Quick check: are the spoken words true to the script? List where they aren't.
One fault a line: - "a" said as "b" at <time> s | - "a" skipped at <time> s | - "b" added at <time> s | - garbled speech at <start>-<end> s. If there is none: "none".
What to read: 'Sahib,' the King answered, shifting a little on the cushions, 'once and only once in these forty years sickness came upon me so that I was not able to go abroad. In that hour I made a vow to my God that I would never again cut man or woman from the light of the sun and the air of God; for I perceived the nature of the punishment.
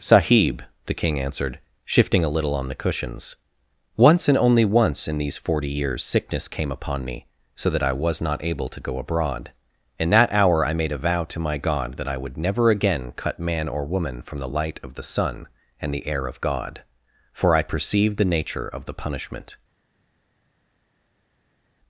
none